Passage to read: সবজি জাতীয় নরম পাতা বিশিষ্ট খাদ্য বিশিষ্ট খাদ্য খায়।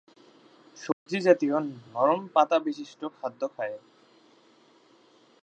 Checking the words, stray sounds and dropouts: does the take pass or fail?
fail